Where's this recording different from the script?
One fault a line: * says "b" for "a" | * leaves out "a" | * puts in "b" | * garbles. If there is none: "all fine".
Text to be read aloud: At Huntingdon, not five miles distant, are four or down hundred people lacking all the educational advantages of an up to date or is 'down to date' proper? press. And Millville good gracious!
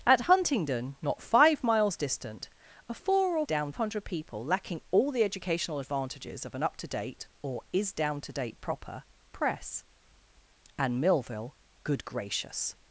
all fine